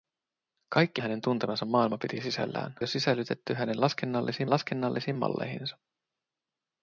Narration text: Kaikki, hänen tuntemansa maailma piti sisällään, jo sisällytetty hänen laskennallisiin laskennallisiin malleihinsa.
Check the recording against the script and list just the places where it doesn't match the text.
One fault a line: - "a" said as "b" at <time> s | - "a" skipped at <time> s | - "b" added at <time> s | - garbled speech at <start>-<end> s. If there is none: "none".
none